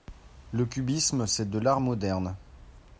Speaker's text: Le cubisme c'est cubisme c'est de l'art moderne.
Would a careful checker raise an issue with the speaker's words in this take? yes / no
yes